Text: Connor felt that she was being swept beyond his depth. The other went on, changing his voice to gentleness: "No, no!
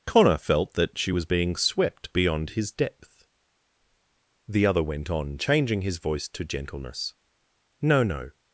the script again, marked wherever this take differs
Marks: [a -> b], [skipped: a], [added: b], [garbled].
Connor felt that she was being swept beyond his depth. The other went on, changing his voice to gentleness: "No, no!